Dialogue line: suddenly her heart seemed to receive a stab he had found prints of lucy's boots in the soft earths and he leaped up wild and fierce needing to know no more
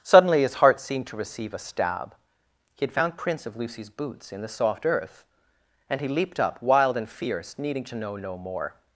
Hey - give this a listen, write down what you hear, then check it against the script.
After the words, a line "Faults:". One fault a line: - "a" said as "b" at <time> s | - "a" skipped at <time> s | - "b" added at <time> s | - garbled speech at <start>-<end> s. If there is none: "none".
suddenly his heart seemed to receive a stab he had found prints of lucy's boots in the soft earth and he leaped up wild and fierce needing to know no more
Faults:
- "her" said as "his" at 0.4 s
- "earths" said as "earth" at 4.8 s